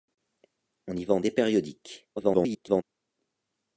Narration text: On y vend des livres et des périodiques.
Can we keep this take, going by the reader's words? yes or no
no